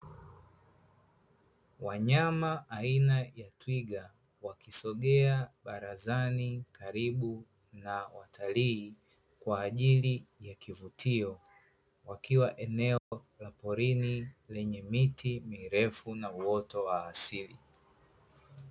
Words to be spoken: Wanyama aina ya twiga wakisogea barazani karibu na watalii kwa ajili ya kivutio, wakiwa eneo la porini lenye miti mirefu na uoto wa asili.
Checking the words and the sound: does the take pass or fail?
fail